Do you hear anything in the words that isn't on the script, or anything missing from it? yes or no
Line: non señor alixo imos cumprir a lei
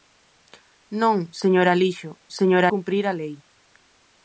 yes